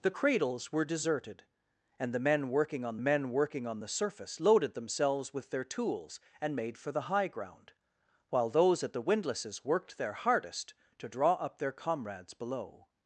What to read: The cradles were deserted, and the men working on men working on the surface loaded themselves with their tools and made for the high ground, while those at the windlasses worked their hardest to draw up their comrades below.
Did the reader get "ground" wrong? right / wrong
right